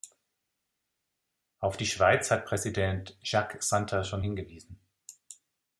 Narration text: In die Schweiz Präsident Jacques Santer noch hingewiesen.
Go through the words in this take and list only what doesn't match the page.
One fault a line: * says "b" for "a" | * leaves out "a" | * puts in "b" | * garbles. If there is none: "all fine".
* says "Auf" for "In"
* puts in "hat"
* says "schon" for "noch"